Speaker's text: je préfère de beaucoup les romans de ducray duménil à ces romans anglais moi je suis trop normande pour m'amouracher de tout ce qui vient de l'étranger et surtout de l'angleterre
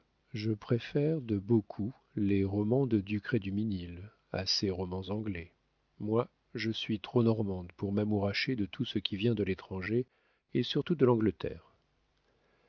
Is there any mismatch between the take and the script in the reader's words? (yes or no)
no